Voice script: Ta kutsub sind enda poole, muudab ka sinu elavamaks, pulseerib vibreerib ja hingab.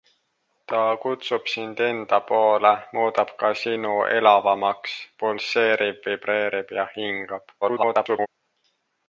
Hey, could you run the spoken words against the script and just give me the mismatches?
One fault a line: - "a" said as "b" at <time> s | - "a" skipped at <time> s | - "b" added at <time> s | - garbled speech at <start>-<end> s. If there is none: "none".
- garbled speech at 7.6-8.3 s